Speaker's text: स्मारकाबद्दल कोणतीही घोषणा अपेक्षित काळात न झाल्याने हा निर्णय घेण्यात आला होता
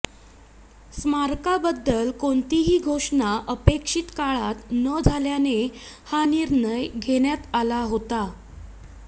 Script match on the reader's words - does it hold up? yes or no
yes